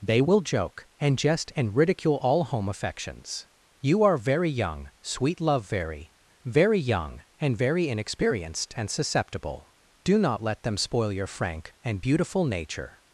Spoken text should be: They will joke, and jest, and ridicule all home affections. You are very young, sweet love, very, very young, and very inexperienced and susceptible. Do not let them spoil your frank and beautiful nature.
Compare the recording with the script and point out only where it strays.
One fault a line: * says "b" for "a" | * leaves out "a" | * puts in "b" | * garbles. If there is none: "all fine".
all fine